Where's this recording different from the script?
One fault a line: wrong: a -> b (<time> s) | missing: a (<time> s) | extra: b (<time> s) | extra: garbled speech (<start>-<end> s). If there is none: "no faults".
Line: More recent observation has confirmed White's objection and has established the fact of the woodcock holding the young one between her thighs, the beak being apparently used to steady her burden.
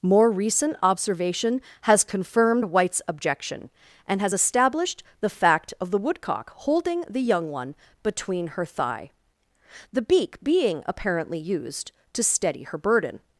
wrong: thighs -> thigh (8.7 s)